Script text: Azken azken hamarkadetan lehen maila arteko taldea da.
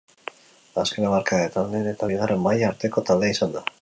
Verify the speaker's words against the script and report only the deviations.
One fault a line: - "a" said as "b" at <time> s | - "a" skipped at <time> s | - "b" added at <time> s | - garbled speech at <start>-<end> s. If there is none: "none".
- "azken" skipped at 1.1 s
- "eta bigarren" added at 1.9 s
- "izan" added at 3.4 s